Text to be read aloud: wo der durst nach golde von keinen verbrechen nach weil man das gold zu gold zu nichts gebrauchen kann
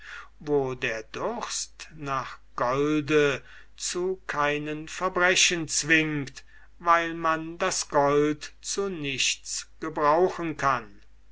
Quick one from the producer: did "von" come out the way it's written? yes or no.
no